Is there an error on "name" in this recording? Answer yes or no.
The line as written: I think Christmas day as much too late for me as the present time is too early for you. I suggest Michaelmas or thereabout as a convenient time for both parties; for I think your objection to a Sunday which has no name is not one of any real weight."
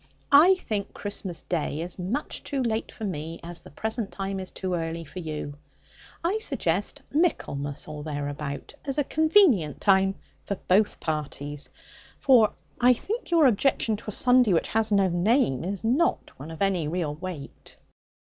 no